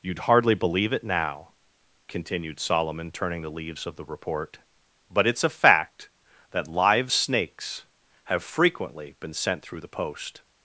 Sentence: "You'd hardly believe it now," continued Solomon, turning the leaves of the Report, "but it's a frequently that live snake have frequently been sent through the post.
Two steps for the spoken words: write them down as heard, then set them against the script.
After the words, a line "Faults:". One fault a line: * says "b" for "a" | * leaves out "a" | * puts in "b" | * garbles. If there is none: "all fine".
"You'd hardly believe it now," continued Solomon, turning the leaves of the Report, "but it's a fact that live snakes have frequently been sent through the post.
Faults:
* says "fact" for "frequently"
* says "snakes" for "snake"